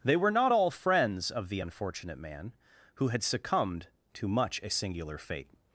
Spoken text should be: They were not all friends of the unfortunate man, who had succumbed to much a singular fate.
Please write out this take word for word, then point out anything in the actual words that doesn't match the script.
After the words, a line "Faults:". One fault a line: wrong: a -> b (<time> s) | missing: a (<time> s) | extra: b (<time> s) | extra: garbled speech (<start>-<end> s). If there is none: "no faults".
They were not all friends of the unfortunate man, who had succumbed to much a singular fate.
Faults:
no faults